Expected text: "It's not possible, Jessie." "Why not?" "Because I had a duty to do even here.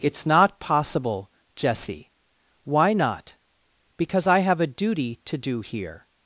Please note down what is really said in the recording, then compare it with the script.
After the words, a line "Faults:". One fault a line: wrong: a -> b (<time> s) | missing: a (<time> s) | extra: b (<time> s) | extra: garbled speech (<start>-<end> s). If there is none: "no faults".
"It's not possible, Jessie." "Why not?" "Because I have a duty to do here.
Faults:
wrong: had -> have (4.4 s)
missing: even (5.6 s)